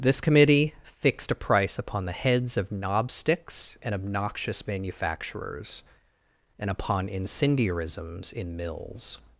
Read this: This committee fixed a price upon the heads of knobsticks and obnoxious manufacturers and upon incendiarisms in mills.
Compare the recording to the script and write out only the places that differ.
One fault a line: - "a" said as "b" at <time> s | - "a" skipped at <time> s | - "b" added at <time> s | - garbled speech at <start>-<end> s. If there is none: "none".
none